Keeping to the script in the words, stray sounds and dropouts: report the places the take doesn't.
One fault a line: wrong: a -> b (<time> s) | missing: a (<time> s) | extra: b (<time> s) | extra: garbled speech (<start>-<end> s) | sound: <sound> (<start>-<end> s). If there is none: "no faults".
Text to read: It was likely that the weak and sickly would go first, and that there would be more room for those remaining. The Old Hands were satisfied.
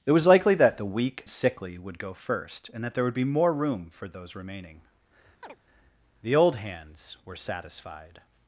missing: and (1.2 s)
sound: chirp (5.4-5.6 s)